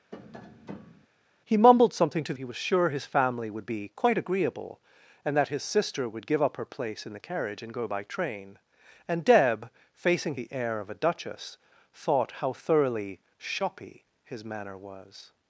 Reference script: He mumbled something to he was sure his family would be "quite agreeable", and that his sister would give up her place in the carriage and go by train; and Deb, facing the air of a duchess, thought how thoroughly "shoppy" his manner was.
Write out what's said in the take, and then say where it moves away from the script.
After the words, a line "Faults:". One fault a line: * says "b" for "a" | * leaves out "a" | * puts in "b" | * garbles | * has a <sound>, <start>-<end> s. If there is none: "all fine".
He mumbled something to he was sure his family would be "quite agreeable", and that his sister would give up her place in the carriage and go by train; and Deb, facing the air of a duchess, thought how thoroughly "shoppy" his manner was.
Faults:
* has a tap, 0.1-1.1 s